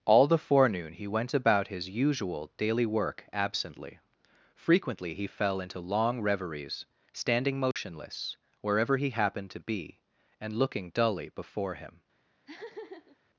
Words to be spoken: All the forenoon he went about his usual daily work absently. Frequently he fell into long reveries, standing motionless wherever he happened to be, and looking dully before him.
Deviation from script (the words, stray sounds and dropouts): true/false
true